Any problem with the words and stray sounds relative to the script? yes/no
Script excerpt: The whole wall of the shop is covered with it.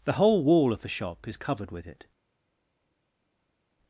no